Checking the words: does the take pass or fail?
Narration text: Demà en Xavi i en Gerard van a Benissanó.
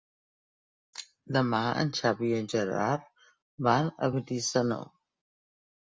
pass